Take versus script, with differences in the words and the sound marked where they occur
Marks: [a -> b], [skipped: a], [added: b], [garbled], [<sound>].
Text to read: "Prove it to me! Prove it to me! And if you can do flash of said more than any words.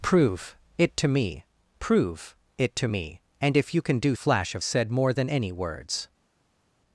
"Prove it to me! Prove it to me! And if you can do flash of said more than any words.